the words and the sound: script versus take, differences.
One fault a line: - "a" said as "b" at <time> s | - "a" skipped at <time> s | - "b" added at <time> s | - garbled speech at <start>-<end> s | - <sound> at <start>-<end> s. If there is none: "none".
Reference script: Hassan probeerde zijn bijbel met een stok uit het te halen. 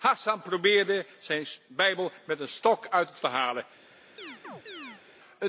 - chirp at 4.2-5.0 s